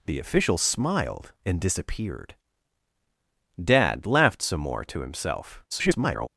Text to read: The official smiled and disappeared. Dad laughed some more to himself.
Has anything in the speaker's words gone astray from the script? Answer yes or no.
yes